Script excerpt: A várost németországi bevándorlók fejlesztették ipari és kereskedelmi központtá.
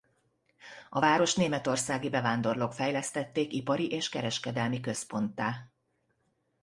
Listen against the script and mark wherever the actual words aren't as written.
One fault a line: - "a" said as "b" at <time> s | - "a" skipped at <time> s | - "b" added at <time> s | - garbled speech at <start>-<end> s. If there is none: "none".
none